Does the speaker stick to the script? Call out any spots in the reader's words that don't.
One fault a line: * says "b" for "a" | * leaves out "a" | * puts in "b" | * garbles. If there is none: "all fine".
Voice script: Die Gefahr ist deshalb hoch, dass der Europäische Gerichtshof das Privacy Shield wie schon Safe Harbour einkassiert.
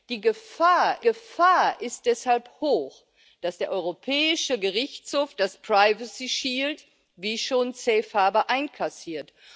* puts in "Gefahr"